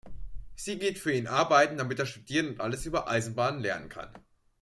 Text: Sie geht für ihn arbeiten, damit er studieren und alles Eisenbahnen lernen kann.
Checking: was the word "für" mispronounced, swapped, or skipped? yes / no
no